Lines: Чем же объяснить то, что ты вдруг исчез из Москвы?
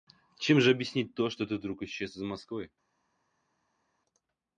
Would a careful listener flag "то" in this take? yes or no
no